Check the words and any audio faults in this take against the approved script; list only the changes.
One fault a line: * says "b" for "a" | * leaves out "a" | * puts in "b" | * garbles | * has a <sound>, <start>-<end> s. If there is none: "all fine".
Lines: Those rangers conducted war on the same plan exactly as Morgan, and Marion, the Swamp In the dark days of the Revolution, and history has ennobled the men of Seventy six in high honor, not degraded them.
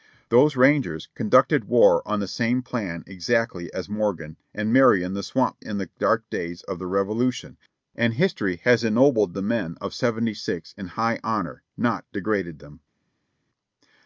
all fine